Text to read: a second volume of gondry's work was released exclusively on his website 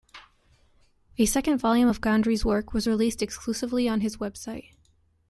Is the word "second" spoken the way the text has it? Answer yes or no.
yes